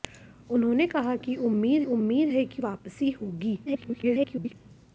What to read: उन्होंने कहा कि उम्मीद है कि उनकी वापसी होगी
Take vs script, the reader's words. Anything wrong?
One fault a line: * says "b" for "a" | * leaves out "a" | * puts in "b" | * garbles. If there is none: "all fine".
* puts in "उम्मीद"
* leaves out "उनकी"
* garbles